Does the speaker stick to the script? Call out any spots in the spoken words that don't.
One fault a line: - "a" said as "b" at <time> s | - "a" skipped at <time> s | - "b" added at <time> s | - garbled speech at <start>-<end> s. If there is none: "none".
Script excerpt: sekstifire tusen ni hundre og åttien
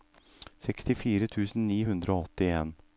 none